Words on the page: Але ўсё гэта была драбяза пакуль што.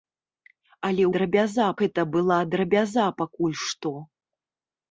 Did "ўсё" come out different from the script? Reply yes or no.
yes